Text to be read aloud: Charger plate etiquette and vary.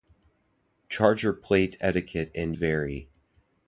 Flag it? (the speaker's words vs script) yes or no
no